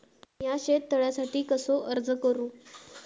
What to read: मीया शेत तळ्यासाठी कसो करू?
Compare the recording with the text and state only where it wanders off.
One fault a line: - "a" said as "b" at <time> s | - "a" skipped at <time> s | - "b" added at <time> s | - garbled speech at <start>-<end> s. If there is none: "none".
- "अर्ज" added at 1.9 s